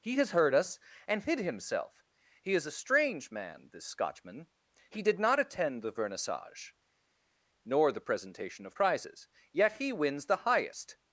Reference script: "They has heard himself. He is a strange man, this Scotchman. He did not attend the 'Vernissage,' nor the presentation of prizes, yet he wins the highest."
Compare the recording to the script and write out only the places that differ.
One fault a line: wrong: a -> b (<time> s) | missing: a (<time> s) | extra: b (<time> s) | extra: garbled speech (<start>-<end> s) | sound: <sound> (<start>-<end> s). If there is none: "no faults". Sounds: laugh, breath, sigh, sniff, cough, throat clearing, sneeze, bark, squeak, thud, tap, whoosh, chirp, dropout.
wrong: They -> He (0.0 s)
extra: us and hid (0.6 s)